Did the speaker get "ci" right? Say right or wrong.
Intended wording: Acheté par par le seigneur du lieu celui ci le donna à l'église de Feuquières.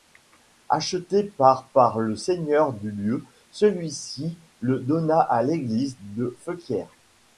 right